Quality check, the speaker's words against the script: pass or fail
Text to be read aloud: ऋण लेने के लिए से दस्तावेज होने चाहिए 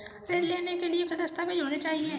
pass